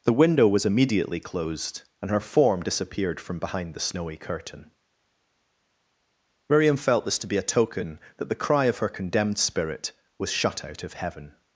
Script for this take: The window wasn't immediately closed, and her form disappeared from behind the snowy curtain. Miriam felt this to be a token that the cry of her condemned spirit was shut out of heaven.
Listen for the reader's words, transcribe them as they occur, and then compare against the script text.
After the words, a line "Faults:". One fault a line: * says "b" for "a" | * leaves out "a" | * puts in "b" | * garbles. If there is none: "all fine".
The window was immediately closed, and her form disappeared from behind the snowy curtain. Miriam felt this to be a token that the cry of her condemned spirit was shut out of heaven.
Faults:
* says "was" for "wasn't"